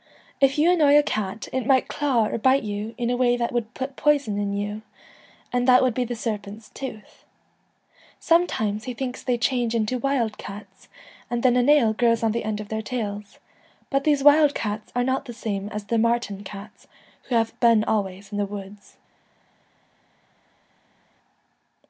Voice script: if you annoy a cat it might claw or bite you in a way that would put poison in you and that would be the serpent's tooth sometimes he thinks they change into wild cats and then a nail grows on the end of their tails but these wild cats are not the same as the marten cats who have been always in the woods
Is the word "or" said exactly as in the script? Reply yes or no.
yes